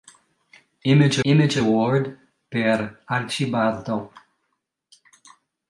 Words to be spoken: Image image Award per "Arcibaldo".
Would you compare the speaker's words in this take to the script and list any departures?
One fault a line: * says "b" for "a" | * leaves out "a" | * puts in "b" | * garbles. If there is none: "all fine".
all fine